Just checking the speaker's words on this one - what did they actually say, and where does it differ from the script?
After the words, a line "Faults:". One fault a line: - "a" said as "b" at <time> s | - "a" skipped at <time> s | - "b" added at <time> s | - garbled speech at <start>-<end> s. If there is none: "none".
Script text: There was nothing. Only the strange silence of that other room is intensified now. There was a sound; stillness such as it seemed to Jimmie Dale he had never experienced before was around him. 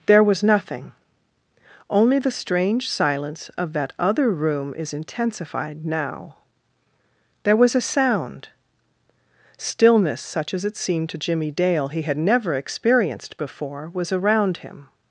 There was nothing. Only the strange silence of that other room is intensified now. There was a sound; stillness such as it seemed to Jimmie Dale he had never experienced before was around him.
Faults:
none